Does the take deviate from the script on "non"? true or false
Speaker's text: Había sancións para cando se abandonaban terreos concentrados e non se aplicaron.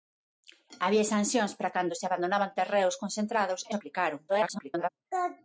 true